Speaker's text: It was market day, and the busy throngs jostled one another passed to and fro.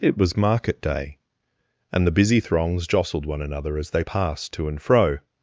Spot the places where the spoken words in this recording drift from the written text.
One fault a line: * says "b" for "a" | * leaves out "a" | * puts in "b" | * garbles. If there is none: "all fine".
* puts in "as they"